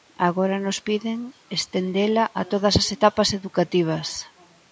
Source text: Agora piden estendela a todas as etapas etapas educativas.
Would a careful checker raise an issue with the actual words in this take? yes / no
yes